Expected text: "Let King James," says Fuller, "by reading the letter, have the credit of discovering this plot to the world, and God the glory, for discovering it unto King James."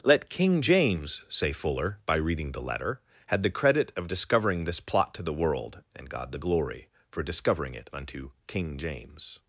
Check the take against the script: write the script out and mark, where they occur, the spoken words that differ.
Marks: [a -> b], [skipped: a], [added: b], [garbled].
"Let King James," [says -> say] Fuller, "by reading the letter, [have -> had] the credit of discovering this plot to the world, and God the glory, for discovering it unto King James."